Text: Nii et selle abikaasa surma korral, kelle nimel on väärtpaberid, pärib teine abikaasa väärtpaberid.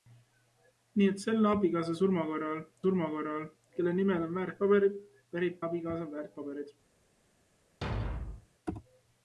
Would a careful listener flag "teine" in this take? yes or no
yes